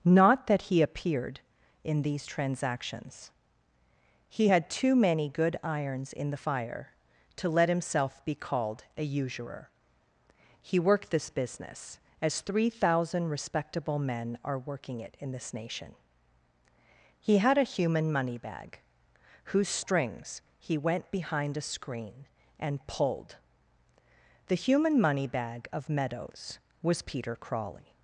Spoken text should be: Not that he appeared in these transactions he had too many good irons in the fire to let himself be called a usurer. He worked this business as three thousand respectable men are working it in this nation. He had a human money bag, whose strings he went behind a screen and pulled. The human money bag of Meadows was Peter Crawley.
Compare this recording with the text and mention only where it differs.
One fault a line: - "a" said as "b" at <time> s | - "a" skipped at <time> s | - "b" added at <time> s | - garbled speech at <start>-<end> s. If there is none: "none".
none